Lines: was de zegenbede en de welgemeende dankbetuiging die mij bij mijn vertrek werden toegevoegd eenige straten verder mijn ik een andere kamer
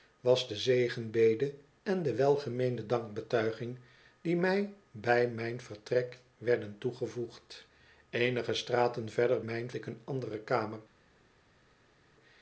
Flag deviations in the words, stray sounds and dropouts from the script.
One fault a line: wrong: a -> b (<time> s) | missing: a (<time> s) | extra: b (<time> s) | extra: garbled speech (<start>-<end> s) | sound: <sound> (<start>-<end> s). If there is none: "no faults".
no faults